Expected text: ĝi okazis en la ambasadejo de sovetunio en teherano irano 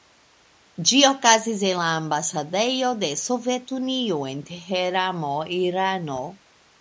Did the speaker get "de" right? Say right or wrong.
right